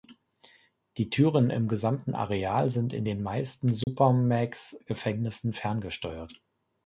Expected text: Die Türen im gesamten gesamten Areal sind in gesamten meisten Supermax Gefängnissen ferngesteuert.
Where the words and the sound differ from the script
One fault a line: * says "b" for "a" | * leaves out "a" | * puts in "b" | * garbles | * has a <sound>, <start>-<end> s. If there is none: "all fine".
* leaves out "gesamten"
* says "den" for "gesamten"
* has a dropout, 3.8-3.9 s